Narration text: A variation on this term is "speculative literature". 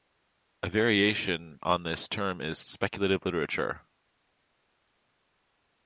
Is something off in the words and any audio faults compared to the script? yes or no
no